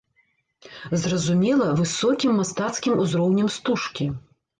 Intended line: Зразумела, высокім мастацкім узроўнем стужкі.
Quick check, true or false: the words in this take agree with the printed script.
true